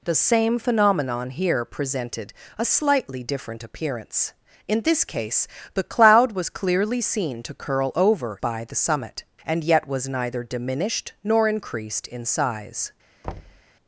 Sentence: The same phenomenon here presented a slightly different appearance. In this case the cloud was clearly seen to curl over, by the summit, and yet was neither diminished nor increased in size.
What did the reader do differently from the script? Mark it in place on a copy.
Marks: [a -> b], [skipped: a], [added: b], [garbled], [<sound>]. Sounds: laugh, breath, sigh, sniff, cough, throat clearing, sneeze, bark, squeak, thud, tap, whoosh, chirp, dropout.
The same phenomenon here presented a slightly different appearance. In this case the cloud was clearly seen to curl over, by the summit, and yet was neither diminished nor increased in size. [thud]